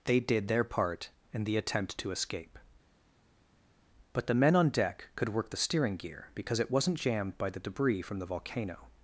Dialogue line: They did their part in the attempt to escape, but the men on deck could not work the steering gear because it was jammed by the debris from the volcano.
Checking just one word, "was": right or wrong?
wrong